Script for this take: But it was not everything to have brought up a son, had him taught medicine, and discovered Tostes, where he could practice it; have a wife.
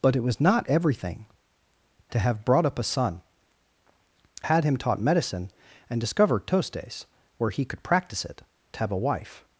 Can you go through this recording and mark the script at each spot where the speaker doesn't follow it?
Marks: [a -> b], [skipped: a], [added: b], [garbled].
But it was not everything to have brought up a son, had him taught medicine, and discovered Tostes, where he could practice it; have a wife.